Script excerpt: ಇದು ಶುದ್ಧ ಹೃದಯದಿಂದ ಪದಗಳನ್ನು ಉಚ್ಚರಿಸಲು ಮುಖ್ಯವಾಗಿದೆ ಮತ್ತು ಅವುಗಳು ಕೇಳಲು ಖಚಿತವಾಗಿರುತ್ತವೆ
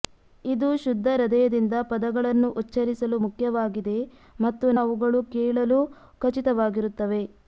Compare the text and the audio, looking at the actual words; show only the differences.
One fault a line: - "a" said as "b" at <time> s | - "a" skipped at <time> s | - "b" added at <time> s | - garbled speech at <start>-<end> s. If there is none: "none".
none